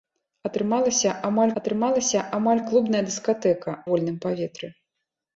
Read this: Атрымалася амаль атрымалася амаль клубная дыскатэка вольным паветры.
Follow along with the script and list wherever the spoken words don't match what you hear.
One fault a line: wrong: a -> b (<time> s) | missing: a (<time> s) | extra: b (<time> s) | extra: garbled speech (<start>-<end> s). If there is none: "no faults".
no faults